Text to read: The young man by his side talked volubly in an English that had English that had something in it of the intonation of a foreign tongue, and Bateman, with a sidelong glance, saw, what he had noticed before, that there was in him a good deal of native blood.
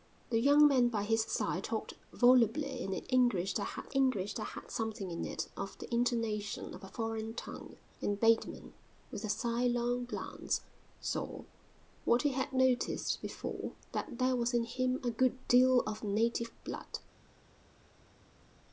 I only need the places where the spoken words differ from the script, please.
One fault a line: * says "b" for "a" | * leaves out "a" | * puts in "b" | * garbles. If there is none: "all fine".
all fine